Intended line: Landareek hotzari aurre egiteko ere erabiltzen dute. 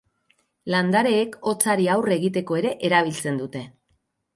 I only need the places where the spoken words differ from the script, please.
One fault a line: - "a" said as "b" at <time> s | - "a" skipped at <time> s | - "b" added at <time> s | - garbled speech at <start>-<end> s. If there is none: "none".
none